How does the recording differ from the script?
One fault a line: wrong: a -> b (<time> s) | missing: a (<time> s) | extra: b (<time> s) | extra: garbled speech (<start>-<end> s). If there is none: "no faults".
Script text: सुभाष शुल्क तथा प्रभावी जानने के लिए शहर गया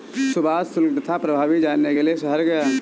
no faults